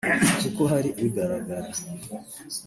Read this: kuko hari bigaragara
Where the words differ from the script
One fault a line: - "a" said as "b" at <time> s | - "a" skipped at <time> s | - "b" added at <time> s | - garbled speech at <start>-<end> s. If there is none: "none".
none